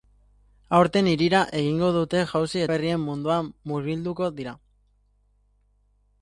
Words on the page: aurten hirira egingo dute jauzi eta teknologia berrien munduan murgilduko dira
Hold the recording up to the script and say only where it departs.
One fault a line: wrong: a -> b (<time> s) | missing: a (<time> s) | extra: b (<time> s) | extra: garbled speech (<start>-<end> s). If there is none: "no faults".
missing: eta teknologia (2.6 s)